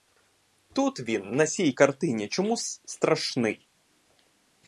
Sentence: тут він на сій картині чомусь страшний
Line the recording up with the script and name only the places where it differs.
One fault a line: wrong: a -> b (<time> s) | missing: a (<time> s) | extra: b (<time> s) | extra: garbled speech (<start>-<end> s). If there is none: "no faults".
no faults